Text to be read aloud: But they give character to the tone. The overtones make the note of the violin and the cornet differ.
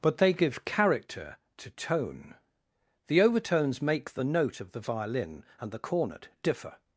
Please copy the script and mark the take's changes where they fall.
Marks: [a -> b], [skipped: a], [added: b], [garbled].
But they give character to [skipped: the] tone. The overtones make the note of the violin and the cornet differ.